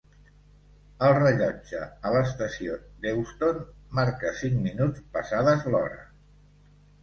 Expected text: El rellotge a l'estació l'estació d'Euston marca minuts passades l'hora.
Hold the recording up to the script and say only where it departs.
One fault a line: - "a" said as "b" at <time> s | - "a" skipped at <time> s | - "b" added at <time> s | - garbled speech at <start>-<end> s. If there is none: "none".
- "l'estació" skipped at 2.8 s
- "cinc" added at 4.4 s